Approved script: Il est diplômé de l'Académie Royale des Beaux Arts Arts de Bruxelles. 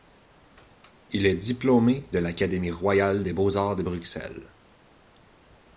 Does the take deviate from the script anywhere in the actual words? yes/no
yes